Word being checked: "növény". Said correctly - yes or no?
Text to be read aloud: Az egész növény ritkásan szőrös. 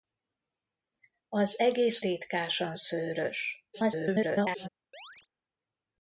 no